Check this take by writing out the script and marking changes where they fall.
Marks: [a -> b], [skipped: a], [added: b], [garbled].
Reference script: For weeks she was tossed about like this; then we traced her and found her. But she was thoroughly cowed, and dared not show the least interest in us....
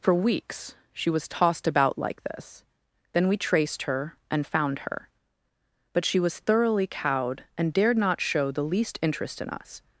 For weeks she was tossed about like this; then we traced her and found her. But she was thoroughly cowed, and dared not show the least interest in us....